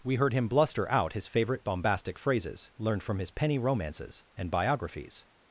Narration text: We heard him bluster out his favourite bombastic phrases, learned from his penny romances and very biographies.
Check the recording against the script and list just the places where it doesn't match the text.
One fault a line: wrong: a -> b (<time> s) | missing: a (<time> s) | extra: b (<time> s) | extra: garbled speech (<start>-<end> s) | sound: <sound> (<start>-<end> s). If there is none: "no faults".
missing: very (4.5 s)